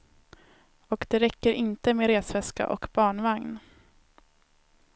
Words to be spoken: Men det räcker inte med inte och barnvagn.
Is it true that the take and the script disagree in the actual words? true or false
true